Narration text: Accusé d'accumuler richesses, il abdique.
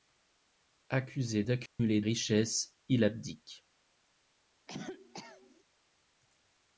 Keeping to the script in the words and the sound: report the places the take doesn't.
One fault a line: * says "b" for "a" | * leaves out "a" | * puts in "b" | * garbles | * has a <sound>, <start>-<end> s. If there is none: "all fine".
* has a dropout, 1.7-1.8 s
* has a cough, 4.7-5.6 s